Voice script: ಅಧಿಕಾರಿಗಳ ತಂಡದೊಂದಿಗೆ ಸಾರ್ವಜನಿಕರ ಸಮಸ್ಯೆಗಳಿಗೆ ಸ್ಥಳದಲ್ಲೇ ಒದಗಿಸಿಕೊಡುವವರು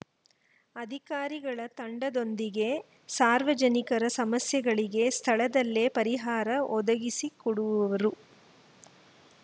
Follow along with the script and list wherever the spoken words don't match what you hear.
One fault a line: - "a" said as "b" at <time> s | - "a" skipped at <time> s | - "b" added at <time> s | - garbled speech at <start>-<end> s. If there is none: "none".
- "ಪರಿಹಾರ" added at 5.9 s